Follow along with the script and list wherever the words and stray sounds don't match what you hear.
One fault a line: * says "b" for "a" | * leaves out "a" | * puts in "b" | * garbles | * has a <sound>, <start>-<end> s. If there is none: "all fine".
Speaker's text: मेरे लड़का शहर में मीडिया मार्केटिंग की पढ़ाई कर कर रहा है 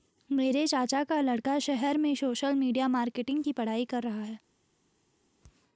* puts in "चाचा का"
* puts in "सोशल"
* leaves out "कर"